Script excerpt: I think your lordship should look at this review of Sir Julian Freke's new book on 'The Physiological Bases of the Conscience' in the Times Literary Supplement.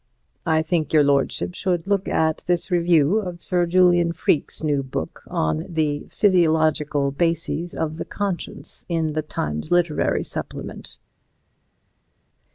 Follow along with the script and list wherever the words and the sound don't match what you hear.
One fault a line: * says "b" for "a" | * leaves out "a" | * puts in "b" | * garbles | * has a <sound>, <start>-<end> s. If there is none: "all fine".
all fine